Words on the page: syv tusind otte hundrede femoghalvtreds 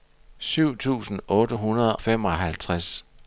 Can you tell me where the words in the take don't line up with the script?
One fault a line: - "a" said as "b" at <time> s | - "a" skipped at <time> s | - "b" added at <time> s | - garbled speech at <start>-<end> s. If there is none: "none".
none